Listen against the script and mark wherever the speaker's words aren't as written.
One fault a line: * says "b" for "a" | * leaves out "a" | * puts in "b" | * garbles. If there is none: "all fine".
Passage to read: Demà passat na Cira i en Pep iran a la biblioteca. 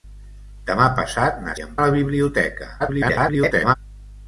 * leaves out "Cira"
* leaves out "Pep iran"
* garbles